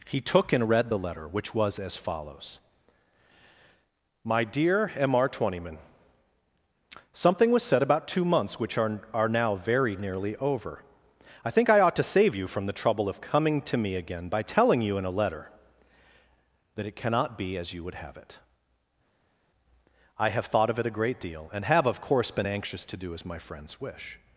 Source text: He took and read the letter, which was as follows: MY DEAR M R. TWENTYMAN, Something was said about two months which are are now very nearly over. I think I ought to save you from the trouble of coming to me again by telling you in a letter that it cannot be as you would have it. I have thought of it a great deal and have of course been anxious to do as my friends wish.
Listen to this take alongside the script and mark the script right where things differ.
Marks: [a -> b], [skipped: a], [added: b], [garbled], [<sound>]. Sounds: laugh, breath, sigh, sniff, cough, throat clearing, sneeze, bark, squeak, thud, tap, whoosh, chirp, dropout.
He took and read the letter, which was as follows: MY DEAR M R. TWENTYMAN, Something was said about two months which are are now very nearly over. I think I ought to save you from the trouble of coming to me again by telling you in a letter that it cannot be as you would have it. I have thought of it a great deal and have of course been anxious to do as my friends wish.